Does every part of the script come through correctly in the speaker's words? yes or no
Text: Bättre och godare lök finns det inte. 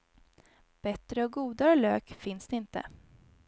yes